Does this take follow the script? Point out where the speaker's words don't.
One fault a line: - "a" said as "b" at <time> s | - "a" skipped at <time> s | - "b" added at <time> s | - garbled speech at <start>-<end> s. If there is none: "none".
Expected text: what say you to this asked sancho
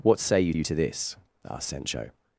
- "you" added at 0.5 s